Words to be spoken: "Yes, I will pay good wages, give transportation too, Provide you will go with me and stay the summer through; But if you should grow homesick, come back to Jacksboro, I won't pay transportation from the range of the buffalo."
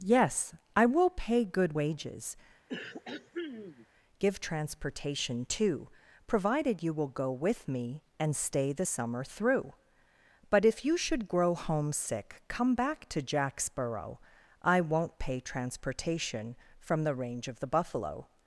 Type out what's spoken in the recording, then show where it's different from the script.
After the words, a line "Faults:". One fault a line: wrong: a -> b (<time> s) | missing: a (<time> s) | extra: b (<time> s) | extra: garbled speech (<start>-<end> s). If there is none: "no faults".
"Yes, I will pay good wages, give transportation too, Provided you will go with me and stay the summer through; But if you should grow homesick, come back to Jacksboro, I won't pay transportation from the range of the buffalo."
Faults:
wrong: Provide -> Provided (6.3 s)